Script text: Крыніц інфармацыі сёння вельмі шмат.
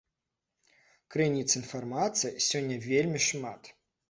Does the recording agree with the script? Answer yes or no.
yes